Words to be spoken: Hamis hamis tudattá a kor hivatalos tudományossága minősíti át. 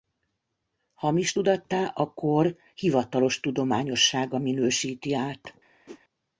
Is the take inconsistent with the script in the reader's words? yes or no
yes